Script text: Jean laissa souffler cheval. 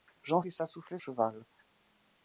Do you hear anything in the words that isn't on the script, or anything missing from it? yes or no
no